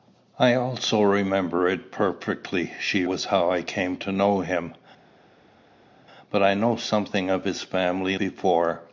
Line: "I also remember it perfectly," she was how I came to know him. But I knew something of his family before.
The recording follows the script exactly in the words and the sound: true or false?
true